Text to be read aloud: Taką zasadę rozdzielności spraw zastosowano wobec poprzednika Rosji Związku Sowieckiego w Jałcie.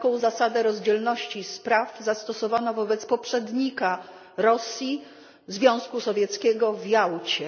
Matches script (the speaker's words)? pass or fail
pass